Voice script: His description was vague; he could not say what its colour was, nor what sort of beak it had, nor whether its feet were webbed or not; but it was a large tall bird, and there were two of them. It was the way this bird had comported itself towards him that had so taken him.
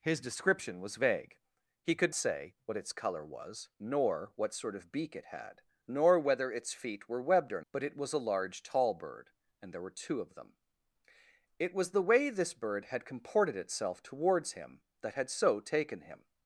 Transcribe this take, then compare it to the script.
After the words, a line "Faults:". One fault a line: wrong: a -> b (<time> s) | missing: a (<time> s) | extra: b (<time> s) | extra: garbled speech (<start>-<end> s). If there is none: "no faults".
His description was vague; he could say what its colour was, nor what sort of beak it had, nor whether its feet were webbed or; but it was a large tall bird, and there were two of them. It was the way this bird had comported itself towards him that had so taken him.
Faults:
missing: not (2.1 s)
missing: not (7.6 s)